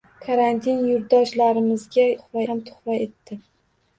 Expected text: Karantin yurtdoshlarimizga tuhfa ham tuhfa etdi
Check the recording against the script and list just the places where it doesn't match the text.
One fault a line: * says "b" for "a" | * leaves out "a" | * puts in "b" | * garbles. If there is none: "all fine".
all fine